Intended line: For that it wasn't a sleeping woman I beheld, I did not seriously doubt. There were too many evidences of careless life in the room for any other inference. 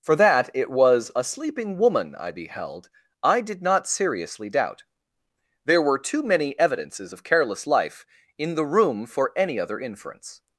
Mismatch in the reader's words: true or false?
true